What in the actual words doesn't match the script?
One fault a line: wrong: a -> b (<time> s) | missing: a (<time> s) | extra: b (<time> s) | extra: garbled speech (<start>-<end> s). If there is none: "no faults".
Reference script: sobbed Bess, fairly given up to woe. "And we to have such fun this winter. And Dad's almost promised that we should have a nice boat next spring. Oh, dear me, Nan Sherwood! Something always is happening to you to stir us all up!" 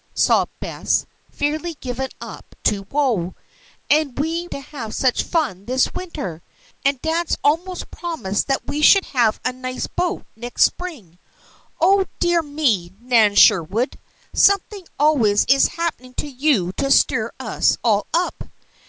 no faults